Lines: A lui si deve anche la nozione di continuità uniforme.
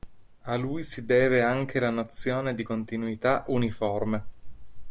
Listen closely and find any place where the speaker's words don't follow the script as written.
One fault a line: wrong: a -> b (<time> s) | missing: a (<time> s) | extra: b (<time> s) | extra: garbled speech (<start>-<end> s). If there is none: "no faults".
no faults